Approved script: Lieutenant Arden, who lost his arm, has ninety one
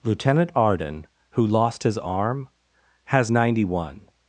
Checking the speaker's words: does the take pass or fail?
pass